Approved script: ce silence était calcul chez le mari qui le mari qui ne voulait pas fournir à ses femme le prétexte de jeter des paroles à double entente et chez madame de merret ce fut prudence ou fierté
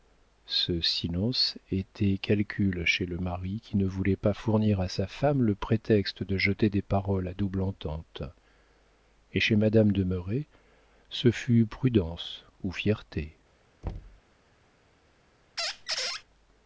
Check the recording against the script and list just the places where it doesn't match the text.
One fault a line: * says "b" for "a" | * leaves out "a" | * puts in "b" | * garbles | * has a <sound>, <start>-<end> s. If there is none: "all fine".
* leaves out "le mari qui"
* says "sa" for "ses"
* has a thud, 13.8-14.2 s
* has a squeak, 15.6-16.2 s